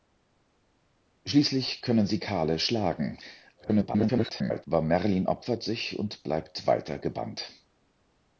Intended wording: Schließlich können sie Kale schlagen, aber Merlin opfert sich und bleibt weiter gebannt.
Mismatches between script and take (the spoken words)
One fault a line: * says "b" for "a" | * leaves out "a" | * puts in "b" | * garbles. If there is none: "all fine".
* garbles